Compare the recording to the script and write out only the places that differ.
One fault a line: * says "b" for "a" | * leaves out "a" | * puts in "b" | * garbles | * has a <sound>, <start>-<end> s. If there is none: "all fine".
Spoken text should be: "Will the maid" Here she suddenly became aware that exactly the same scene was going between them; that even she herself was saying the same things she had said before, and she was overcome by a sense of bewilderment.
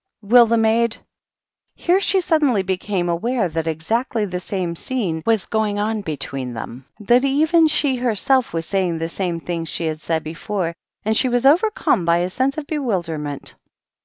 * puts in "on"